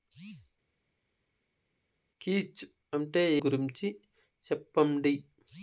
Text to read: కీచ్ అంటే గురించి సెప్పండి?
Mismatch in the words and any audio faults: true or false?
false